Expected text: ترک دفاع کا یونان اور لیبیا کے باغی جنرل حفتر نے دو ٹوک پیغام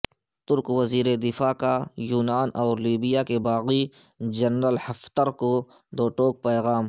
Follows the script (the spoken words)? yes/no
no